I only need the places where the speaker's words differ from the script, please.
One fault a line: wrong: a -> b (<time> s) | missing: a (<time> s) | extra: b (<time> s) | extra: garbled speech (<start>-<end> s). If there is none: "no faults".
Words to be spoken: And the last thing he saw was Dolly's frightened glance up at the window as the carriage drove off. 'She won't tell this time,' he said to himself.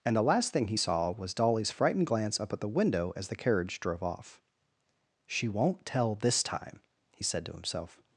no faults